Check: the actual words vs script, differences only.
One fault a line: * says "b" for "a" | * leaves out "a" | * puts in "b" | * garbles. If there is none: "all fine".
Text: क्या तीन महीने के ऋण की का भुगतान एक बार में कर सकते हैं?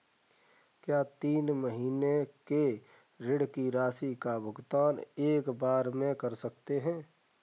* puts in "राशि"